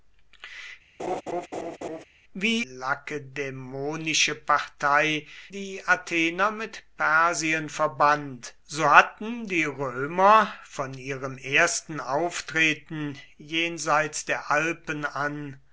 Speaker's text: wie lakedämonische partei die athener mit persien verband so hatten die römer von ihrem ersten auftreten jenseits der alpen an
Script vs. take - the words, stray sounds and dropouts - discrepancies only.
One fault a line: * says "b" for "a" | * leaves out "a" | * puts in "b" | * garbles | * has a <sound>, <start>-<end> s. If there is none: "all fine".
* has a laugh, 1.0-2.0 s